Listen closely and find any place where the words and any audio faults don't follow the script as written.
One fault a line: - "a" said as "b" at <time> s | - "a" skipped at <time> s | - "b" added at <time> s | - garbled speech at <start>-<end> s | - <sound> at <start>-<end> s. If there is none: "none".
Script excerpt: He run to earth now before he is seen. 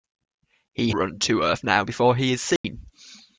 - dropout at 2.6-2.6 s